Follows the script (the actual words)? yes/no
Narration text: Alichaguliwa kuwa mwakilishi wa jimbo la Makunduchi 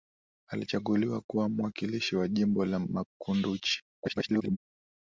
no